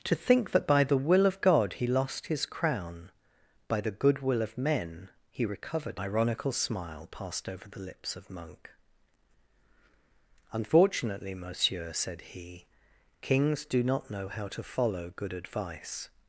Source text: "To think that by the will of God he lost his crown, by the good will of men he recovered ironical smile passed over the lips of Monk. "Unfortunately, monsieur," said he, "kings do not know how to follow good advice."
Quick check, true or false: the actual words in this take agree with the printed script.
true